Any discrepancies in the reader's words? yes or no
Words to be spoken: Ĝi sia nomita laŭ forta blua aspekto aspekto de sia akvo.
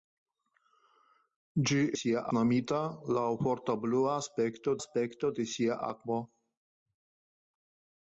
no